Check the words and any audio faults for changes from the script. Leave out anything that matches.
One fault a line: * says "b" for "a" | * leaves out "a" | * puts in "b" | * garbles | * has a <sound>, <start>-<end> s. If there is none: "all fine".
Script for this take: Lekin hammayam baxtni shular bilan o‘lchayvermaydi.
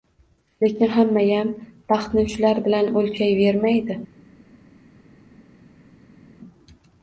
all fine